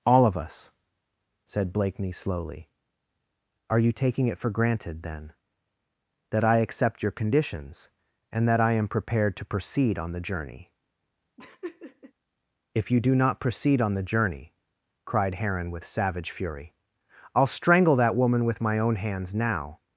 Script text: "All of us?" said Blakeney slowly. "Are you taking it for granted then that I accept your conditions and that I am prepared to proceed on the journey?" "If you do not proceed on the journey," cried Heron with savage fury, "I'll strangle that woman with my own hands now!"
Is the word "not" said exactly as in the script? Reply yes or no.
yes